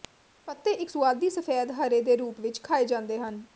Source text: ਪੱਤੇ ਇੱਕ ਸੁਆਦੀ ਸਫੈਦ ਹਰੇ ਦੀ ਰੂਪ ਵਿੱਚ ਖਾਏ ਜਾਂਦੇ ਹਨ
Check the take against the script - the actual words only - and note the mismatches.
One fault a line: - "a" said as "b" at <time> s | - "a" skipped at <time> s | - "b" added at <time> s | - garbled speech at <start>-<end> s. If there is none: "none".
- "ਦੀ" said as "ਦੇ" at 2.0 s